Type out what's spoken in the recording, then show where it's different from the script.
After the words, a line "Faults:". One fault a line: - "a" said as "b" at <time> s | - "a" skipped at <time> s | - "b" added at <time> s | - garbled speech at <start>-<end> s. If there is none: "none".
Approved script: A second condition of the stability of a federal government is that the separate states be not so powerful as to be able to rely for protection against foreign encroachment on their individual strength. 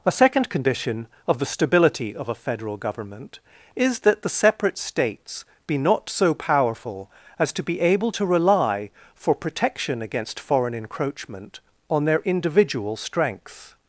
A second condition of the stability of a federal government is that the separate states be not so powerful as to be able to rely for protection against foreign encroachment on their individual strength.
Faults:
none